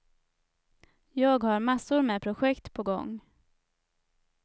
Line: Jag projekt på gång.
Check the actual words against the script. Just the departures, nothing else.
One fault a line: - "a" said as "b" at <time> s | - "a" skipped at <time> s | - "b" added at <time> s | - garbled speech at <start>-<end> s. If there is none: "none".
- "har massor med" added at 1.4 s